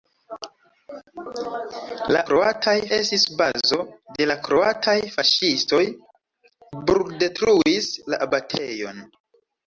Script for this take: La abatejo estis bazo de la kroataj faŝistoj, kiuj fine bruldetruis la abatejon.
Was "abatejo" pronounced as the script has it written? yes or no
no